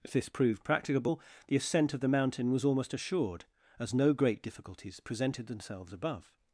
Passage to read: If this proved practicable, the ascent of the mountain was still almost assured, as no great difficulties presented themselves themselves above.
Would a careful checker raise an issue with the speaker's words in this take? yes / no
yes